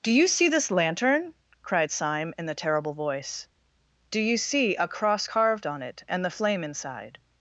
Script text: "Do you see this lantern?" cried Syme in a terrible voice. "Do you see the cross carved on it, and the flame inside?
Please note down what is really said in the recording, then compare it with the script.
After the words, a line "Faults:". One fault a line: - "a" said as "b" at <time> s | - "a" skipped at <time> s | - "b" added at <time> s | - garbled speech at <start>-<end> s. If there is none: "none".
"Do you see this lantern?" cried Syme in the terrible voice. "Do you see a cross carved on it, and the flame inside?
Faults:
- "a" said as "the" at 2.5 s
- "the" said as "a" at 4.8 s